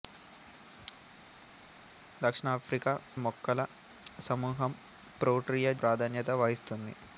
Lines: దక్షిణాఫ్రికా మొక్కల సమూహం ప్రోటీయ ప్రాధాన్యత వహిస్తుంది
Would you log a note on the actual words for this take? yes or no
no